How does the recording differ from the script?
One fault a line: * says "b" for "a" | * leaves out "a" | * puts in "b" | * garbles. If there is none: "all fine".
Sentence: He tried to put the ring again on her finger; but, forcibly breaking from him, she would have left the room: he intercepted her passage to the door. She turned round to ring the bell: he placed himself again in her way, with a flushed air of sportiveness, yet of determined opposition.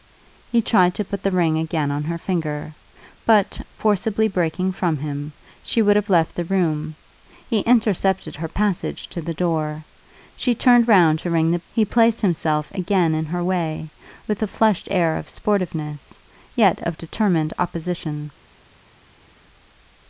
* leaves out "bell"